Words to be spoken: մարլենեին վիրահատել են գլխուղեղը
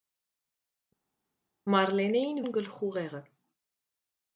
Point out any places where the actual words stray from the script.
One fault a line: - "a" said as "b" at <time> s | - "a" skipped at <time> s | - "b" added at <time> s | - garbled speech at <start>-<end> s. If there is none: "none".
- "վիրահատել" skipped at 2.4 s